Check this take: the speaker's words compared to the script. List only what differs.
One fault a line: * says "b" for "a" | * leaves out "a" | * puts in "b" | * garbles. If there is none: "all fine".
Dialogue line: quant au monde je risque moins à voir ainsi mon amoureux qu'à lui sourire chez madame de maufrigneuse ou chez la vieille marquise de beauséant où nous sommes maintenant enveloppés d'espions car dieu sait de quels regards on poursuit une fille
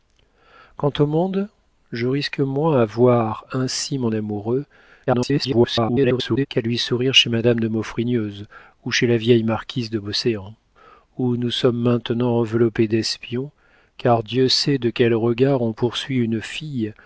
* garbles